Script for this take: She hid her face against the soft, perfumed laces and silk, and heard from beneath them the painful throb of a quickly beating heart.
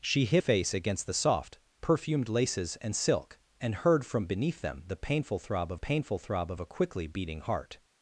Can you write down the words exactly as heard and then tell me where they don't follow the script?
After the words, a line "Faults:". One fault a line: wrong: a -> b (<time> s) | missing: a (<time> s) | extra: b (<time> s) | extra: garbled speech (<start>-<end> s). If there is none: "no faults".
She hid face against the soft, perfumed laces and silk, and heard from beneath them the painful throb of painful throb of a quickly beating heart.
Faults:
missing: her (0.4 s)
extra: painful throb of (5.7 s)